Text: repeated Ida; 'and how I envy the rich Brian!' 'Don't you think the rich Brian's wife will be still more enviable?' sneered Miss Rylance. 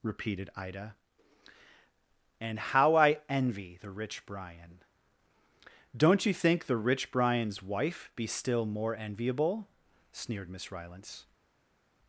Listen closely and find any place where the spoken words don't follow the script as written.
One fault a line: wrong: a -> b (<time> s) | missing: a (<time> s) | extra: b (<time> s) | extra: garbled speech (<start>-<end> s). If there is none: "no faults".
missing: will (8.1 s)